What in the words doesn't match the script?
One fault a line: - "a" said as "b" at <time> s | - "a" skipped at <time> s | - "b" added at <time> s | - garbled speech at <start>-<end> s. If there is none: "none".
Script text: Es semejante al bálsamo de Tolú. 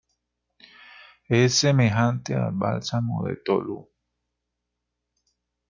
none